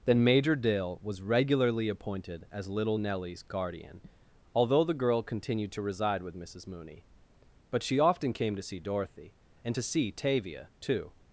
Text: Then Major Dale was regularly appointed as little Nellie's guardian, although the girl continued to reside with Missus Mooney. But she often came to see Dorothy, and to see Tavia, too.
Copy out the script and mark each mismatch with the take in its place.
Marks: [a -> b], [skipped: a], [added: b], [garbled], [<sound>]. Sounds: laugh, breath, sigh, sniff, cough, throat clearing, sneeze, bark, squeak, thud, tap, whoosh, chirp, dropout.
Then Major Dale was regularly appointed as little Nellie's guardian, although the girl continued to reside with Missus Mooney. But she often came to see Dorothy, and to see Tavia, too.